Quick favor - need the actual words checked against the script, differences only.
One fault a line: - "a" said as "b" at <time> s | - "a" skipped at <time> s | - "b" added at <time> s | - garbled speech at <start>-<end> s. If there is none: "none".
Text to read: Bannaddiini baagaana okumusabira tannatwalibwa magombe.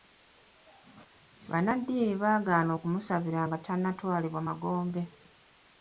- "nga" added at 3.5 s